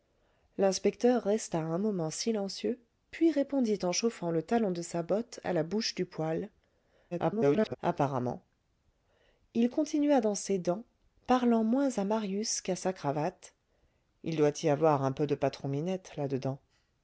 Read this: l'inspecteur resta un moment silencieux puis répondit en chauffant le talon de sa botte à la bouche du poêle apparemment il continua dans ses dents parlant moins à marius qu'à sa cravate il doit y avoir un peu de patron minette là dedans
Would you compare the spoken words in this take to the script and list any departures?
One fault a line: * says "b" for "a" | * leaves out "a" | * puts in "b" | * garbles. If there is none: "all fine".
* garbles